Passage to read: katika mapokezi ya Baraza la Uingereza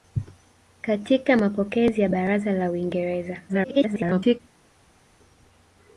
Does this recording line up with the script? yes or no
no